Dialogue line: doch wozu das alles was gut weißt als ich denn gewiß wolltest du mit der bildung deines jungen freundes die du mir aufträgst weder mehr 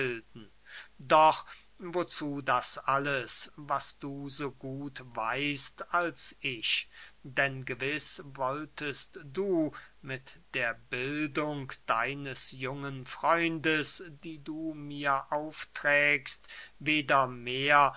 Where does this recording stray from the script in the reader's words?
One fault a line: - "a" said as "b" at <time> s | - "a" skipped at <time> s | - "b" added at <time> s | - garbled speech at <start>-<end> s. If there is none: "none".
- "du so" added at 4.0 s